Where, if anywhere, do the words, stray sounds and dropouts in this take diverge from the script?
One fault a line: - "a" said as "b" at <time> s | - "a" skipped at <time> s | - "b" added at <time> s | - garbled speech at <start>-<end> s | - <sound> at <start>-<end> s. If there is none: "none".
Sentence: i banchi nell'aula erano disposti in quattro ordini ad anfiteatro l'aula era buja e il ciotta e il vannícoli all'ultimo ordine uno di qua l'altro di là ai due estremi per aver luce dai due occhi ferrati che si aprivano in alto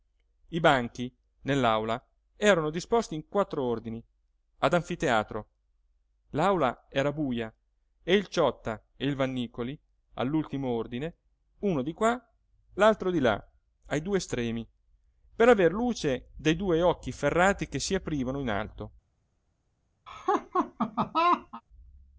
- laugh at 20.1-21.6 s